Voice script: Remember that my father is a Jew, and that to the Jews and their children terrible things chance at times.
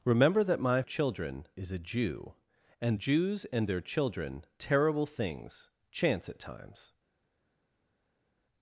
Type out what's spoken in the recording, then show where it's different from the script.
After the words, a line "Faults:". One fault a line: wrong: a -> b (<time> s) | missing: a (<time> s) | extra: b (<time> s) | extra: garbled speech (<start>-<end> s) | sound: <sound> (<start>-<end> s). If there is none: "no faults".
Remember that my children is a Jew, and Jews and their children terrible things chance at times.
Faults:
wrong: father -> children (0.8 s)
missing: that to the (3.0 s)